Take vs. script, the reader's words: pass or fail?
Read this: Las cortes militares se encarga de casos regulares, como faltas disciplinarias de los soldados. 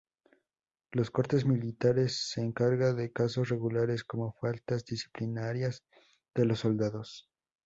pass